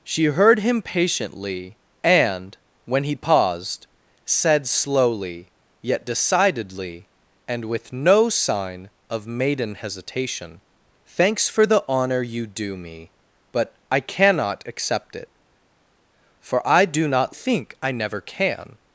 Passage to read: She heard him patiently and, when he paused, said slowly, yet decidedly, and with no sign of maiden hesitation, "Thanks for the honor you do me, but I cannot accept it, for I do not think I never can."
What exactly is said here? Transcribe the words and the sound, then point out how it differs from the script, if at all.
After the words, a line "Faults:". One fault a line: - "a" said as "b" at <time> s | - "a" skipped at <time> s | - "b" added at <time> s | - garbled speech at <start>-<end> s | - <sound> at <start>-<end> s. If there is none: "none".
She heard him patiently and, when he paused, said slowly, yet decidedly, and with no sign of maiden hesitation, "Thanks for the honor you do me, but I cannot accept it, for I do not think I never can."
Faults:
none